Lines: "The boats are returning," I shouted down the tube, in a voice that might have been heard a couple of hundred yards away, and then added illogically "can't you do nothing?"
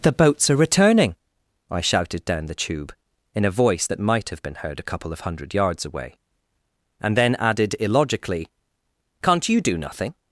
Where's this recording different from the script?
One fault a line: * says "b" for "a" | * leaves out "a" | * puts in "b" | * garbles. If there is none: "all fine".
all fine